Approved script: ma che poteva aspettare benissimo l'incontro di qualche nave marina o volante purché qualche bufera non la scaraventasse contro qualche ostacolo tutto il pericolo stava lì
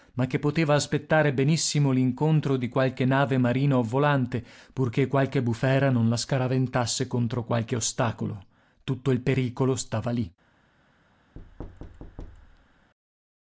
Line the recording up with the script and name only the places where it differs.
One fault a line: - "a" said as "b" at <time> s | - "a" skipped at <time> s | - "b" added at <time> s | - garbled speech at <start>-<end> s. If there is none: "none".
none